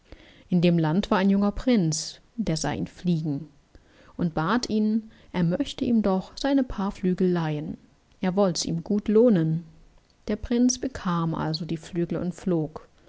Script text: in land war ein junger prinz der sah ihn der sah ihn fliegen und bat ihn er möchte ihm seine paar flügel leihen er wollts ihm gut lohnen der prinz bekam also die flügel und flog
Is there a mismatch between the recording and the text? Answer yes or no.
yes